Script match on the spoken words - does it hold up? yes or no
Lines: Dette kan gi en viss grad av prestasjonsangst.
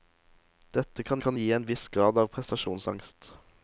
no